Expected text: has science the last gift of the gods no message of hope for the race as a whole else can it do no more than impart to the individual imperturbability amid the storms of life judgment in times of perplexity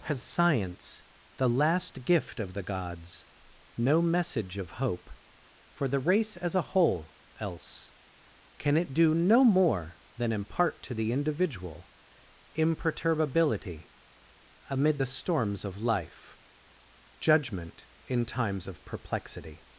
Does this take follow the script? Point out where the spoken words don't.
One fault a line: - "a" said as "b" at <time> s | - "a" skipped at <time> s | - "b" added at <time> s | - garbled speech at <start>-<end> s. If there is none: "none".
none